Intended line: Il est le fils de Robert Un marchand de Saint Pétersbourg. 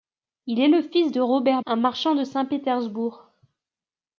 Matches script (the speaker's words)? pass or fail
pass